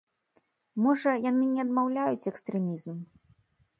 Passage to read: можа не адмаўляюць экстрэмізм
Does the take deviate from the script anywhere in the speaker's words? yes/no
yes